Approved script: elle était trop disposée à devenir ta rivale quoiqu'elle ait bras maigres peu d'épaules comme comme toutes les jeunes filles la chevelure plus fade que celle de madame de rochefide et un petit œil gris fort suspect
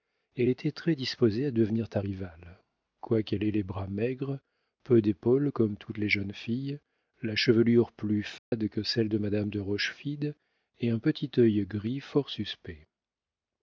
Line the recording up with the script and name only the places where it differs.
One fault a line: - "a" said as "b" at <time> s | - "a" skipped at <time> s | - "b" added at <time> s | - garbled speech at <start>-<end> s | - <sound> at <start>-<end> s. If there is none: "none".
- "trop" said as "très" at 0.7 s
- "les" added at 3.5 s
- "comme" skipped at 5.8 s
- dropout at 8.4-8.5 s